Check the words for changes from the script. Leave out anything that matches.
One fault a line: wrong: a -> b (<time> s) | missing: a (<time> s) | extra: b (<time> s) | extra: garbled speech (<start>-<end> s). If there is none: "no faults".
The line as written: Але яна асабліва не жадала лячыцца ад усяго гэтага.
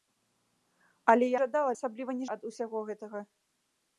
wrong: яна -> жадала (1.4 s)
missing: жадала лячыцца (2.2 s)